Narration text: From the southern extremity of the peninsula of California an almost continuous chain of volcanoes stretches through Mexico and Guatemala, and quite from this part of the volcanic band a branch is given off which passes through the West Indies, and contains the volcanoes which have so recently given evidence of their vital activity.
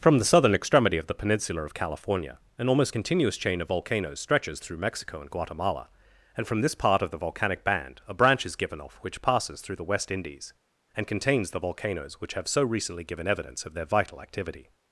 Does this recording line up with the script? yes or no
no